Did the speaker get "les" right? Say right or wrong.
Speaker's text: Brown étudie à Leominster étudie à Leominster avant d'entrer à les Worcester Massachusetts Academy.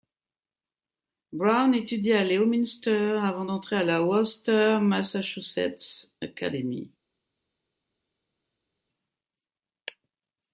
wrong